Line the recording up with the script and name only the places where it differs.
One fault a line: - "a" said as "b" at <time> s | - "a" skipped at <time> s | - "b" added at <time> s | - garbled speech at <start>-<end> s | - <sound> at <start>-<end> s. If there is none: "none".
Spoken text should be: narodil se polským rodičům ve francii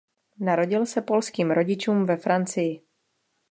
none